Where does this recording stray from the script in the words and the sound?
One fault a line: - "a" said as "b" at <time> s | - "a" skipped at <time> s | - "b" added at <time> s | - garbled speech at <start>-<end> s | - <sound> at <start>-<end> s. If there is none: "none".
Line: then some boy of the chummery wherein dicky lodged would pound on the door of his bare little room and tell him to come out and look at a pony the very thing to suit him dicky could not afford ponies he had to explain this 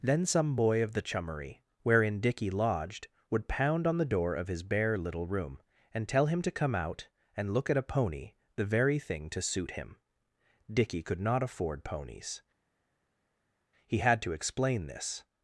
none